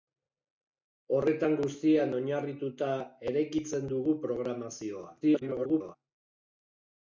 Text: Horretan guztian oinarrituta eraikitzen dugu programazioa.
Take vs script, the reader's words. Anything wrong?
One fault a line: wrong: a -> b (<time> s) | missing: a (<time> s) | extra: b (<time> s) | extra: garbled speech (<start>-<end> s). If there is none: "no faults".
extra: garbled speech (5.2-6.0 s)